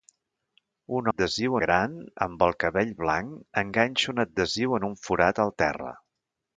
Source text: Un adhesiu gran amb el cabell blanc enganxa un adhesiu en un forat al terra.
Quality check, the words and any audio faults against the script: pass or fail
pass